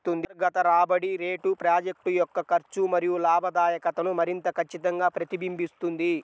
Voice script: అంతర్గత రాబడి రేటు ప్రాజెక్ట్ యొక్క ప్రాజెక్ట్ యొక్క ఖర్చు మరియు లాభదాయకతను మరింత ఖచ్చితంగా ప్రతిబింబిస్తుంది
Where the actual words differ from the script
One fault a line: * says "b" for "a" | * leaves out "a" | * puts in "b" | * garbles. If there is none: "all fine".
* leaves out "ప్రాజెక్ట్ యొక్క"